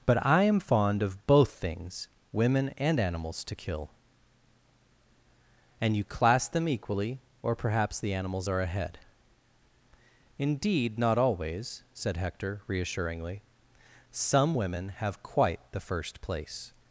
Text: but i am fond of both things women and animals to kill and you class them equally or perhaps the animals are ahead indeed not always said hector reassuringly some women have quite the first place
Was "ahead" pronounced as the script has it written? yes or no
yes